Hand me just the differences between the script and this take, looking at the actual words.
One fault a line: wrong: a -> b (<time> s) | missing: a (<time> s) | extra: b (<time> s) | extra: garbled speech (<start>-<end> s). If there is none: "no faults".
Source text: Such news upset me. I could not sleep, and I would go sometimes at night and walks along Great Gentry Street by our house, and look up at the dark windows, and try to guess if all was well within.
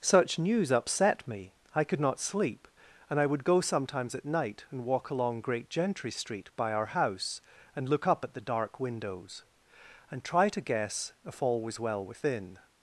wrong: walks -> walk (4.8 s)